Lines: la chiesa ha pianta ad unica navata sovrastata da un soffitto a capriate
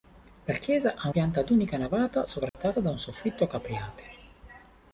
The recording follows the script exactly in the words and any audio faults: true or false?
false